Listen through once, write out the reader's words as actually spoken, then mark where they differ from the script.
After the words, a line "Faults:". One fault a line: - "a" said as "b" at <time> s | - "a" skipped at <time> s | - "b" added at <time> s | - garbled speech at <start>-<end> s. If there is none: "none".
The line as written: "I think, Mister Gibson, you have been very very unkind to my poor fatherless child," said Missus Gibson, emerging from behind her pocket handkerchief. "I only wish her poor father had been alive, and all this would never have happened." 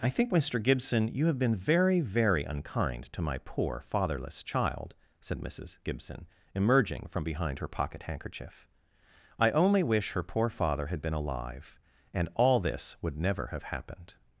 "I think, Mister Gibson, you have been very very unkind to my poor fatherless child," said Missus Gibson, emerging from behind her pocket handkerchief. "I only wish her poor father had been alive, and all this would never have happened."
Faults:
none